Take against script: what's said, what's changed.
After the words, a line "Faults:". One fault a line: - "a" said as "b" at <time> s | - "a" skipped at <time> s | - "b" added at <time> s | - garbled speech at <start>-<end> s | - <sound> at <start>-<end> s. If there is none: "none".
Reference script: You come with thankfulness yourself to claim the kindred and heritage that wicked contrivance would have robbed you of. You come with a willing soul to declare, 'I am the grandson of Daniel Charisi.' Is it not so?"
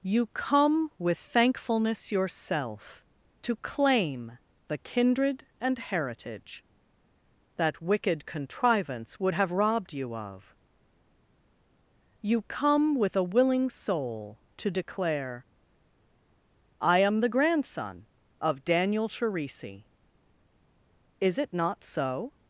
You come with thankfulness yourself to claim the kindred and heritage that wicked contrivance would have robbed you of. You come with a willing soul to declare, 'I am the grandson of Daniel Charisi.' Is it not so?"
Faults:
none